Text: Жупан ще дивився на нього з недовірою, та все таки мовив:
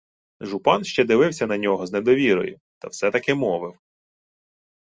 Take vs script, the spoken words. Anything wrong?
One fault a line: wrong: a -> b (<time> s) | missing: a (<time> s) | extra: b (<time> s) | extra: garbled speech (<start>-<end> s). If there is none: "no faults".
no faults